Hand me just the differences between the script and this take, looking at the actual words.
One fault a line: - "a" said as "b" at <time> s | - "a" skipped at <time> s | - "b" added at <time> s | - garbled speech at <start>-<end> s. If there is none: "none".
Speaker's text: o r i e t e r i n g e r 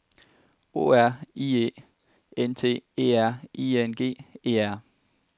- "n" added at 2.4 s